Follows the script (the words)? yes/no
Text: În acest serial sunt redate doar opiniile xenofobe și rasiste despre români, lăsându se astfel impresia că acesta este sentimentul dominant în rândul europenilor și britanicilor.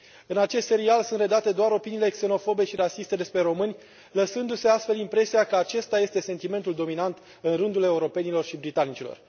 yes